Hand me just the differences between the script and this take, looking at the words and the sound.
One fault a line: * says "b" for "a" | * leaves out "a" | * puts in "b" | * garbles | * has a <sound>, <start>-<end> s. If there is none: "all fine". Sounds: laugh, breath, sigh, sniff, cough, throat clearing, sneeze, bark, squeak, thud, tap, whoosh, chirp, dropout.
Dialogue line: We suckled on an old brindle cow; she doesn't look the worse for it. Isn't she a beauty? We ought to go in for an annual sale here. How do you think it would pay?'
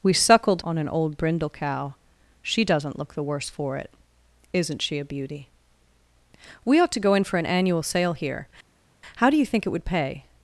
all fine